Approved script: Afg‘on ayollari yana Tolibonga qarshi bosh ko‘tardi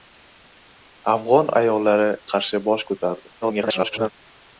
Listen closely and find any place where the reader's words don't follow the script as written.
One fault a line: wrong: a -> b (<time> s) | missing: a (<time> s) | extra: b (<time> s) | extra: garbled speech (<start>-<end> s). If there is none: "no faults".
missing: yana Tolibonga (2.1 s)
extra: garbled speech (3.4-4.1 s)